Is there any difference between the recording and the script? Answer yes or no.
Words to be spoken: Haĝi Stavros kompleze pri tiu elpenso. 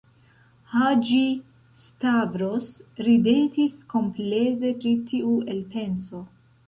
yes